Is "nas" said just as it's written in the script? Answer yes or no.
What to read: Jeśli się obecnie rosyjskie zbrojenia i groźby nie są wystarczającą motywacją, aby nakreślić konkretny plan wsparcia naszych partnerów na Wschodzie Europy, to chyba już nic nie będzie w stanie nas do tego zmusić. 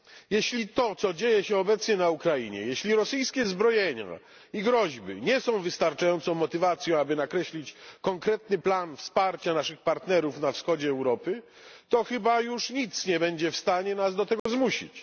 yes